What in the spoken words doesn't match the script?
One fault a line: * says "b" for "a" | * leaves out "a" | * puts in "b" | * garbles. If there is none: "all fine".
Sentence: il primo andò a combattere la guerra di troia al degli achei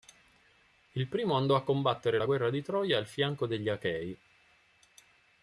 * puts in "fianco"